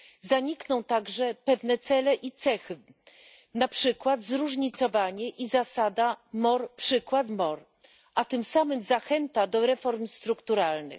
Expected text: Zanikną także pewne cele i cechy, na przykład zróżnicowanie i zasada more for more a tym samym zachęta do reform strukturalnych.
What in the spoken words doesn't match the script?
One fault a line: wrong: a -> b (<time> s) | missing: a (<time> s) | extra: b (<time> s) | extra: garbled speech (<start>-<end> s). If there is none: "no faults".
wrong: for -> przykład (6.7 s)